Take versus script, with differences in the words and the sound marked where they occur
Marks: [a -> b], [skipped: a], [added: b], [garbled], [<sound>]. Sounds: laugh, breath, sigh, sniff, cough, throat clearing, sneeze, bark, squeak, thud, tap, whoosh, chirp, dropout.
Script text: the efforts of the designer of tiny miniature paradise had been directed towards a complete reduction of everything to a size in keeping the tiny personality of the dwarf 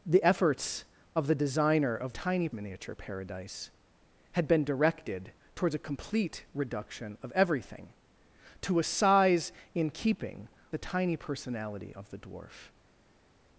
the efforts of the designer of tiny miniature paradise had been directed towards a complete reduction of everything to a size in keeping the tiny personality of the dwarf